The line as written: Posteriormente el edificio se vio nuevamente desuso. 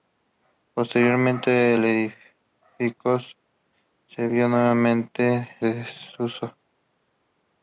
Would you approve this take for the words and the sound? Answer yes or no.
yes